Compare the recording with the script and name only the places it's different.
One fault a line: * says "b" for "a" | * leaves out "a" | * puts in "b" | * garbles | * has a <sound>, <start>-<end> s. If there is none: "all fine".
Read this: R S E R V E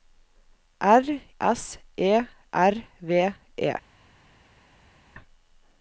all fine